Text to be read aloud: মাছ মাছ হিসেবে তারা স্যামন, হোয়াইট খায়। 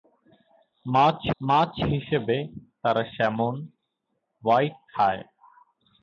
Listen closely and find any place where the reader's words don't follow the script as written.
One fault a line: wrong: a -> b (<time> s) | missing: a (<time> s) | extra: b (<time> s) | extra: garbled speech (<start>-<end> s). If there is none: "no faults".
no faults